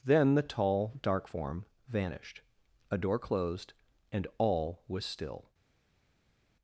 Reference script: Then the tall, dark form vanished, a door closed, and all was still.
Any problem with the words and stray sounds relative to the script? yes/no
no